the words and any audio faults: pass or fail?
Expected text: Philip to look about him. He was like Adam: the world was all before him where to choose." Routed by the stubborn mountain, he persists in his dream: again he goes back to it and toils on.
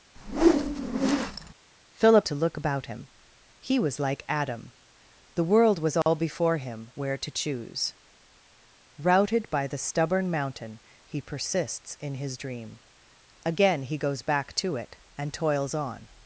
fail